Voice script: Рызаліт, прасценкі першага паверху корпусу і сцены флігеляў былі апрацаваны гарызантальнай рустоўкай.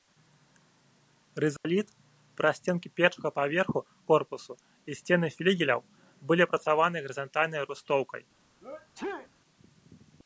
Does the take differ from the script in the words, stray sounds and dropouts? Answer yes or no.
yes